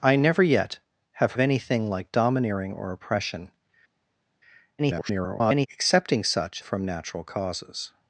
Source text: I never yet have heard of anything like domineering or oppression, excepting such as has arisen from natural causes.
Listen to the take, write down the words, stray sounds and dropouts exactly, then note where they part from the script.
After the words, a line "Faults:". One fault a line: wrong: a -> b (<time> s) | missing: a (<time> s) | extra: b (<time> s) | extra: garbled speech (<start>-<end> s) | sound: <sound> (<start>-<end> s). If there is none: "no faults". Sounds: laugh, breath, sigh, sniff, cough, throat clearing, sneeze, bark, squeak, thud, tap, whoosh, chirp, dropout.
I never yet have of anything like domineering or oppression, [garbled] excepting such from natural causes.
Faults:
missing: heard (1.3 s)
extra: garbled speech (4.8-5.7 s)
missing: as has arisen (6.6 s)